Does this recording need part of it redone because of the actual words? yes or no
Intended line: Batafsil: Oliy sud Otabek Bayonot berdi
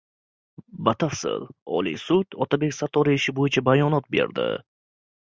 yes